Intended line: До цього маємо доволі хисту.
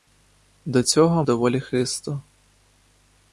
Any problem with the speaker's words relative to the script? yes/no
yes